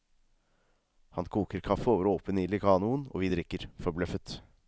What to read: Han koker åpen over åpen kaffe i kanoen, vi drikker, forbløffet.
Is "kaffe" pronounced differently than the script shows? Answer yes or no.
yes